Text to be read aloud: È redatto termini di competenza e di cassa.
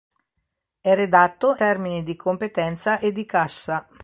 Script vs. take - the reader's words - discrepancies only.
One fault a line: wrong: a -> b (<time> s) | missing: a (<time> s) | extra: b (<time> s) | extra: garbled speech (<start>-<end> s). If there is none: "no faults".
no faults